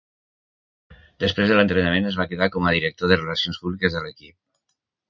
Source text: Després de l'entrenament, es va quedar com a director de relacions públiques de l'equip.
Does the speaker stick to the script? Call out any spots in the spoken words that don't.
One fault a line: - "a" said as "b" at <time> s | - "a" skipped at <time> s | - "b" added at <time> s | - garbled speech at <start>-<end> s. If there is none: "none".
none